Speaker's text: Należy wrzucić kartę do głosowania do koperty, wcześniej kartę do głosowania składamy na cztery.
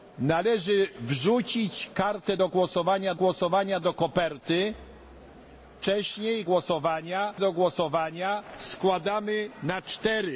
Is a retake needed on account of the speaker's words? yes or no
yes